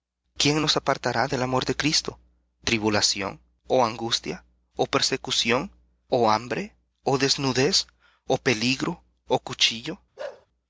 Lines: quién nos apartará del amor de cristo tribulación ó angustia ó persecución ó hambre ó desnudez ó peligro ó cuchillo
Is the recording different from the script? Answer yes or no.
no